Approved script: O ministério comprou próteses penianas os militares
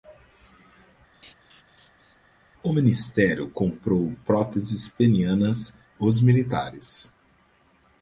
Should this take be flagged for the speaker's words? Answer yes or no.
no